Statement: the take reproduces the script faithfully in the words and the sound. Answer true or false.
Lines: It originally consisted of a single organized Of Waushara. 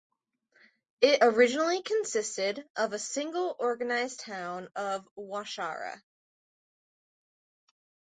false